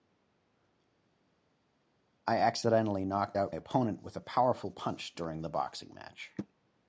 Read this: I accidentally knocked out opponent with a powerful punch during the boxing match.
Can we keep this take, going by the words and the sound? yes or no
yes